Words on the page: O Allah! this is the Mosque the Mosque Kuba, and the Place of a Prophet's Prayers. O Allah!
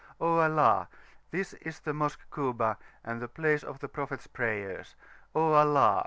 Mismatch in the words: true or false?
true